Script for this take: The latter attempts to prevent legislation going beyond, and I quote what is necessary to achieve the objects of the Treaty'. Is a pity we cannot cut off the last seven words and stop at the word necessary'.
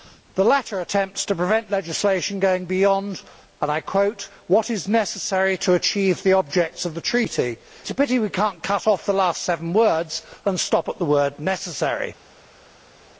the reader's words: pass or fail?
pass